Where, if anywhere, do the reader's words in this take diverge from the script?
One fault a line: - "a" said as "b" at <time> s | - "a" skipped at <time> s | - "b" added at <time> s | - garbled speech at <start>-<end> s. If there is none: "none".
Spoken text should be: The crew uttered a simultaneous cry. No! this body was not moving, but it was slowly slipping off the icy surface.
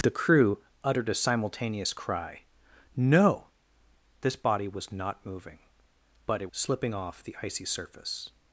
- "was slowly" skipped at 6.5 s